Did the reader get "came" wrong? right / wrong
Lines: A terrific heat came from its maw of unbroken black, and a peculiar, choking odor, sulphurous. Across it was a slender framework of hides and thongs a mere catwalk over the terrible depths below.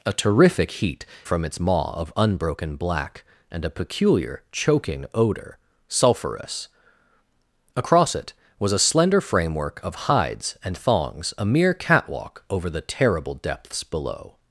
wrong